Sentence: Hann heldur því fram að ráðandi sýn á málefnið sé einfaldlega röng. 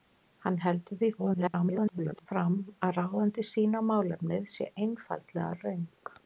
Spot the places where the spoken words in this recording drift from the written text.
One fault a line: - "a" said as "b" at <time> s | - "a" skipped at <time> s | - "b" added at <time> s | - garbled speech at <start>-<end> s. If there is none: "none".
- garbled speech at 1.2-2.3 s